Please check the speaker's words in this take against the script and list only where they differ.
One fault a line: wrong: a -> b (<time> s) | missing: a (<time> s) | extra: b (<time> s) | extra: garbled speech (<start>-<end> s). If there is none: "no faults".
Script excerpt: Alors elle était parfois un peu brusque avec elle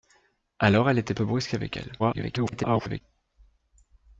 missing: parfois un (1.1 s)
extra: garbled speech (2.0-3.0 s)